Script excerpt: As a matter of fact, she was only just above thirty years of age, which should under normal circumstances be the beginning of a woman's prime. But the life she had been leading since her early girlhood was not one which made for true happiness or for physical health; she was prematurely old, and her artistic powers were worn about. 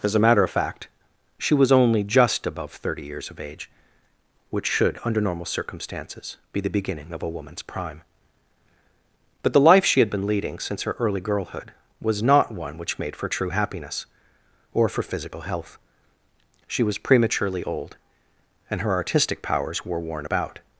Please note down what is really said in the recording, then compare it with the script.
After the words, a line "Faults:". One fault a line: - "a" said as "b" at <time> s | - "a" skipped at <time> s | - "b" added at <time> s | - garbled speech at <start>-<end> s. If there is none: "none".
As a matter of fact, she was only just above thirty years of age, which should under normal circumstances be the beginning of a woman's prime. But the life she had been leading since her early girlhood was not one which made for true happiness or for physical health; she was prematurely old, and her artistic powers were worn about.
Faults:
none